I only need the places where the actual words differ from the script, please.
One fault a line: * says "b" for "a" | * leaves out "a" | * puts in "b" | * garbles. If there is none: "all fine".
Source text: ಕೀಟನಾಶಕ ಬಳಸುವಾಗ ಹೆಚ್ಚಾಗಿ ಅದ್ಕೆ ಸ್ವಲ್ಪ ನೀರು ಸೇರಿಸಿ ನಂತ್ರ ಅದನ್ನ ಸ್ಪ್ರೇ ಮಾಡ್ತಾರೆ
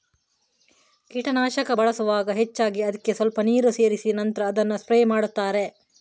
all fine